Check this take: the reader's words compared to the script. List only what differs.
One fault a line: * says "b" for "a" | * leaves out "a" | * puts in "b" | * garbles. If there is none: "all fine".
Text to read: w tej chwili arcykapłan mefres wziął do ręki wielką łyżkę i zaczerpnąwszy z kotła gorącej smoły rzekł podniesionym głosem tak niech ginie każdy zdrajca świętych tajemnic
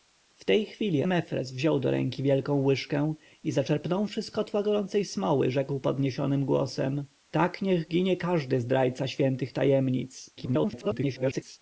* leaves out "arcykapłan"
* garbles